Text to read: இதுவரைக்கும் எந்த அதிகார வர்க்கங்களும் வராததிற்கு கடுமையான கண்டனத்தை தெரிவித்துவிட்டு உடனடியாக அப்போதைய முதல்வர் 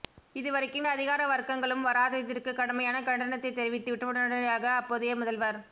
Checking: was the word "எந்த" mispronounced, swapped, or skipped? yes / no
yes